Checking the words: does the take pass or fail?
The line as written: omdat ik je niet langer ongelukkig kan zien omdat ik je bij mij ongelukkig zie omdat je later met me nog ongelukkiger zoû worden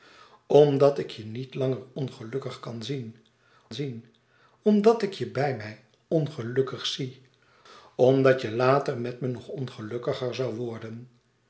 fail